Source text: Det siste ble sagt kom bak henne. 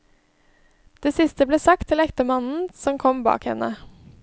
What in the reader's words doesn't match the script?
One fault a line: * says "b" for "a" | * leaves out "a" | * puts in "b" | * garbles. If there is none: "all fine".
* puts in "til ektemannen som"